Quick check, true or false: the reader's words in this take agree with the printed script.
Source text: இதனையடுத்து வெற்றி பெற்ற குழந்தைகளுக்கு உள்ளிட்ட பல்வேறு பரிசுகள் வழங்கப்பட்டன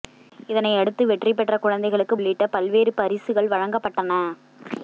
true